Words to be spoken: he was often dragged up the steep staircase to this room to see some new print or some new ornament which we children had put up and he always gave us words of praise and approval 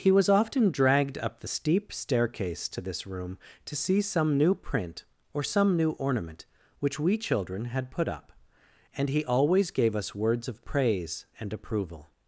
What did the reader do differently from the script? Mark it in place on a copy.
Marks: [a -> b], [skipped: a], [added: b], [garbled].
he was often dragged up the steep staircase to this room to see some new print or some new ornament which we children had put up and he always gave us words of praise and approval